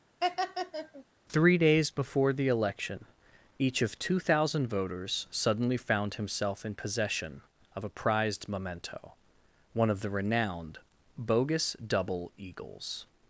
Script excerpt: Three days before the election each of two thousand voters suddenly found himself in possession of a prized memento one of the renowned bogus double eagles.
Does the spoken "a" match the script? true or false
true